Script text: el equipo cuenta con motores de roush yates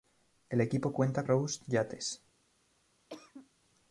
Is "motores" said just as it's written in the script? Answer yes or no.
no